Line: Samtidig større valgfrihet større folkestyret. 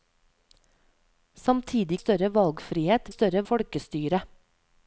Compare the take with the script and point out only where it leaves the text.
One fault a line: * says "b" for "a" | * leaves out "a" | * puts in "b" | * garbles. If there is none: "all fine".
all fine